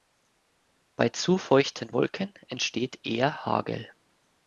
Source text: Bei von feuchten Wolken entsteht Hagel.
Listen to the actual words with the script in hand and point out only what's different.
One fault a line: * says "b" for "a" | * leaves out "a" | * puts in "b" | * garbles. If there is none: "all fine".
* says "zu" for "von"
* puts in "eher"